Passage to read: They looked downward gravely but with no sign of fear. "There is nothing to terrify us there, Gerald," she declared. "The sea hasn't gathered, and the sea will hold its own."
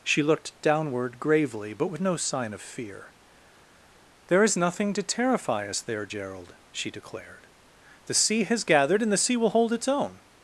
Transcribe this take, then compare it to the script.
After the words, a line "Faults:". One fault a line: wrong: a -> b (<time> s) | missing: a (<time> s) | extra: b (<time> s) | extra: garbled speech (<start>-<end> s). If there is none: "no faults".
She looked downward gravely but with no sign of fear. "There is nothing to terrify us there, Gerald," she declared. "The sea has gathered, and the sea will hold its own."
Faults:
wrong: They -> She (0.0 s)
wrong: hasn't -> has (8.4 s)